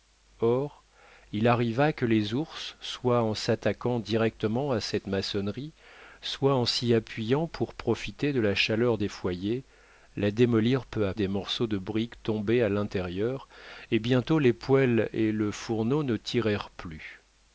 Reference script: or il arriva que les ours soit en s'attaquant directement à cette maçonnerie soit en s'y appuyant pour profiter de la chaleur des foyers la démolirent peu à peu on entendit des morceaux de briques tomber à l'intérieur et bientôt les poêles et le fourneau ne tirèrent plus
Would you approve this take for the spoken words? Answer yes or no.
no